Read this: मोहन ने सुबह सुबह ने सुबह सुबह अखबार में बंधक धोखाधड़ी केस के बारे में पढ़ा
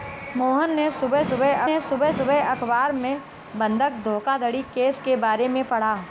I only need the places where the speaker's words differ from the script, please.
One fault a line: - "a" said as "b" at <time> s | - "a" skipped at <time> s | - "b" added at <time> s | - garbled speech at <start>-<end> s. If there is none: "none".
none